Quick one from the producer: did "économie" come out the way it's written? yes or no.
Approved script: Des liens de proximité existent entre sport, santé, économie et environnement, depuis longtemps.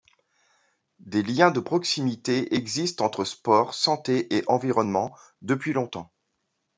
no